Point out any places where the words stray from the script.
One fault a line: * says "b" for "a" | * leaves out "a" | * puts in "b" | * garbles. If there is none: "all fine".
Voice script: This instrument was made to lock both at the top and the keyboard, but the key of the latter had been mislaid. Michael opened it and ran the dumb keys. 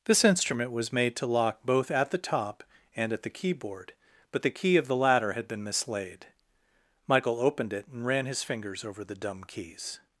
* puts in "at"
* puts in "his fingers over"